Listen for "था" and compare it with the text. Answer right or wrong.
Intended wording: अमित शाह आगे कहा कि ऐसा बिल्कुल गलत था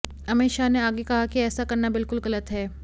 wrong